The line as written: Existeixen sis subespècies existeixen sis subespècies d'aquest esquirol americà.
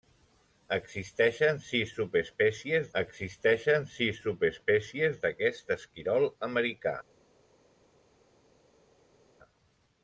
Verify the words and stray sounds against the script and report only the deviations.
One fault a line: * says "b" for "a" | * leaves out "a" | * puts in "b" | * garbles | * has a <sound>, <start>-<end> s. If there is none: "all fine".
all fine